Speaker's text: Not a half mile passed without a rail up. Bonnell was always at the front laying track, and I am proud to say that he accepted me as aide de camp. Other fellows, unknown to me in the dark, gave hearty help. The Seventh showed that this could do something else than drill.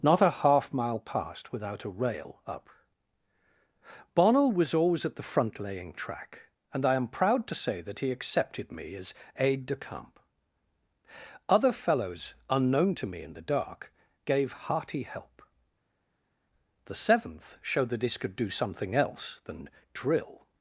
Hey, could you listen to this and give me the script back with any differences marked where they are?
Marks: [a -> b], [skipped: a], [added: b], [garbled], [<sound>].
Not a half mile passed without a rail up. Bonnell was always at the front laying track, and I am proud to say that he accepted me as aide de camp. Other fellows, unknown to me in the dark, gave hearty help. The Seventh showed that this could do something else than drill.